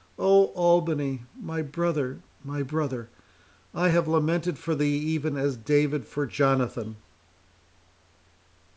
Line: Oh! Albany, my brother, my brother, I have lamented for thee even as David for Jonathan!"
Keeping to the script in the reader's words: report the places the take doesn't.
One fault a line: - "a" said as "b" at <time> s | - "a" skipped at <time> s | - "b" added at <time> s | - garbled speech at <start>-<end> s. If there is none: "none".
none